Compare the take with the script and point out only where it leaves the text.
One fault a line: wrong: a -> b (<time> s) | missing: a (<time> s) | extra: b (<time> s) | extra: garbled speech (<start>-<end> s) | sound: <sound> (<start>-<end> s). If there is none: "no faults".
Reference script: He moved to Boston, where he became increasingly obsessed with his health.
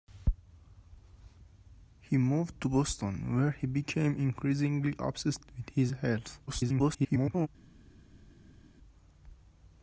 extra: garbled speech (6.5-7.5 s)